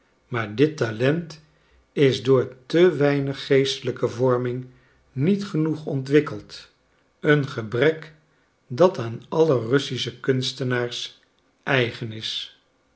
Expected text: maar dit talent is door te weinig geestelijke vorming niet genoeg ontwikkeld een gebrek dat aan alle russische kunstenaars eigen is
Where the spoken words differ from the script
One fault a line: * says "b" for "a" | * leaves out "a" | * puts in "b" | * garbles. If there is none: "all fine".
all fine